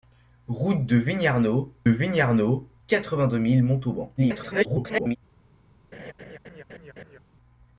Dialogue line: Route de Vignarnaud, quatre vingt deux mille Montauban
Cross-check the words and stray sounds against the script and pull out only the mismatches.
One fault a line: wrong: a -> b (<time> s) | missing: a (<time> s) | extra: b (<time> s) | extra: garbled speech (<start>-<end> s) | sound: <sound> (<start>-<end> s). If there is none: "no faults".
extra: Vignarnaud (1.9 s)
extra: garbled speech (4.2-5.2 s)
sound: laugh (5.9-7.2 s)